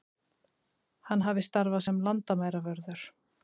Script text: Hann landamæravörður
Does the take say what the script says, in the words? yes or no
no